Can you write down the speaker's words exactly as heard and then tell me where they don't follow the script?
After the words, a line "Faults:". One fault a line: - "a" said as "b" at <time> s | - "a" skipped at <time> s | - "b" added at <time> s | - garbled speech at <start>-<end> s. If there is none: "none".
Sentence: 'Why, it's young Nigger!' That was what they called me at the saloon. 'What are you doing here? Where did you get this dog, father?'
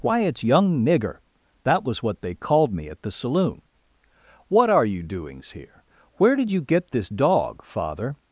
'Why, it's young Nigger!' That was what they called me at the saloon. 'What are you doings here? Where did you get this dog, father?'
Faults:
- "doing" said as "doings" at 5.0 s